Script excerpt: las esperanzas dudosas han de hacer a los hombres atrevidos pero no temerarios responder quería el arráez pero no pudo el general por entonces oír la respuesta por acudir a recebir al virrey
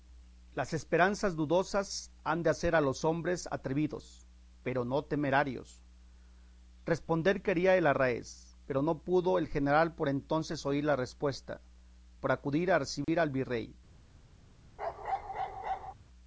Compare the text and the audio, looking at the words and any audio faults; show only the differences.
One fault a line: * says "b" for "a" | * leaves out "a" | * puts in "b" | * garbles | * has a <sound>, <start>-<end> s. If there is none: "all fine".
* has a dropout, 13.0-13.1 s
* has a bark, 14.8-15.9 s